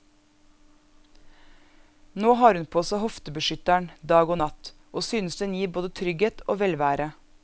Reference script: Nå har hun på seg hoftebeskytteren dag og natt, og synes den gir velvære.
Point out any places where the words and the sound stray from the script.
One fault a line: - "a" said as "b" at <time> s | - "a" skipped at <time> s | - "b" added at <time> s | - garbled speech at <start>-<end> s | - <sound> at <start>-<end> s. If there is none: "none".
- "både trygghet og" added at 5.7 s